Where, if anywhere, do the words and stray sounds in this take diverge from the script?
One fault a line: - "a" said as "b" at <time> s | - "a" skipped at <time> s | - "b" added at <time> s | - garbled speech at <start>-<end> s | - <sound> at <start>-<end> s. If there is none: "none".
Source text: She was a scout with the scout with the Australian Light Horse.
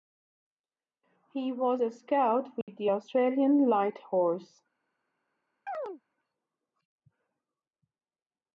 - "She" said as "He" at 1.3 s
- dropout at 2.6-2.7 s
- "scout with the" skipped at 2.9 s
- chirp at 5.7-6.0 s